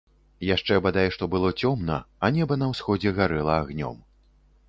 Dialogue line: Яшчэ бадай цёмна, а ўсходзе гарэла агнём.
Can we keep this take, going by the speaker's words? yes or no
no